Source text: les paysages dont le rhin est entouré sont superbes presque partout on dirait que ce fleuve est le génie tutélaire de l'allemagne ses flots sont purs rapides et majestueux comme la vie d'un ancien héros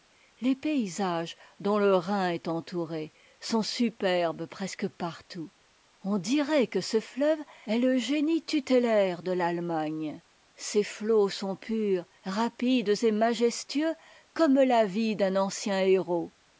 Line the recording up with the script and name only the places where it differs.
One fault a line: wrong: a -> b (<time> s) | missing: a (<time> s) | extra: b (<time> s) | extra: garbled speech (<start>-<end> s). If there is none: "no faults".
no faults